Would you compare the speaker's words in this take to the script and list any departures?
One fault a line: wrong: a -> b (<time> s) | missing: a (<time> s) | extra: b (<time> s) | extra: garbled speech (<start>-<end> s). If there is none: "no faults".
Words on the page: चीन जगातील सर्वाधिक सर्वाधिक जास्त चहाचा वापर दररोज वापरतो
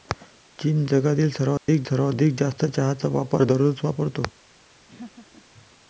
no faults